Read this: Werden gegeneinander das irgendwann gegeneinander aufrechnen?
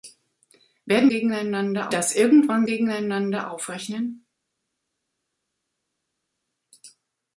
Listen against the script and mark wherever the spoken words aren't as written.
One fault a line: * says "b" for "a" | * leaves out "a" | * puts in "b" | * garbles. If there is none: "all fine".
all fine